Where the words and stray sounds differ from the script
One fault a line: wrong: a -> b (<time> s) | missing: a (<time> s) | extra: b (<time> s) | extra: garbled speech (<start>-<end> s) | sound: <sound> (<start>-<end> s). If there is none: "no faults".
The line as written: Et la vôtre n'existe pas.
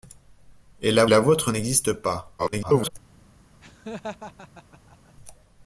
extra: la (1.0 s)
extra: garbled speech (2.4-2.9 s)
sound: laugh (3.6-5.1 s)